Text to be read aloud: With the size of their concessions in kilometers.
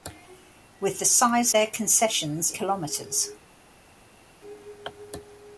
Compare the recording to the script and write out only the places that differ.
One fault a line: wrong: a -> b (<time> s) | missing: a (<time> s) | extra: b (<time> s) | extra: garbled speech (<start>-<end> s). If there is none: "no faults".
missing: of (1.5 s)
missing: in (2.5 s)